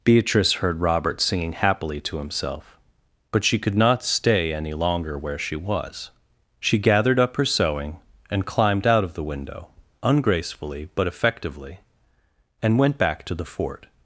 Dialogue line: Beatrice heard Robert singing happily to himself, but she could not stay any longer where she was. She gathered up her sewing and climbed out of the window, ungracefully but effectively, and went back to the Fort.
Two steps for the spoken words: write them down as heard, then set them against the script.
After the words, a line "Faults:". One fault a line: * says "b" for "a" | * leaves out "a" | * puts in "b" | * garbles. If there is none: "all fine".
Beatrice heard Robert singing happily to himself, but she could not stay any longer where she was. She gathered up her sewing and climbed out of the window, ungracefully but effectively, and went back to the Fort.
Faults:
all fine